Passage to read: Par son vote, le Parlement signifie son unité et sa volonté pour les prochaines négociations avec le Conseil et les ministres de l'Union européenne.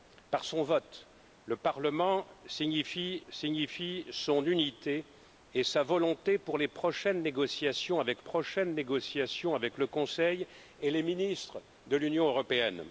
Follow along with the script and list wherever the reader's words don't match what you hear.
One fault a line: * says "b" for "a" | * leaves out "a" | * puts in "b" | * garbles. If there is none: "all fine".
* puts in "signifie"
* puts in "prochaines négociations avec"